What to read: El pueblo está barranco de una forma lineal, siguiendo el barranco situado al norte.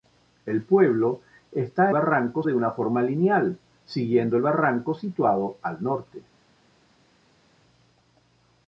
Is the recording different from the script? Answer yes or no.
no